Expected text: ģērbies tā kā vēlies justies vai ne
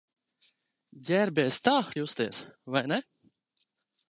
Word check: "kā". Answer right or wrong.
wrong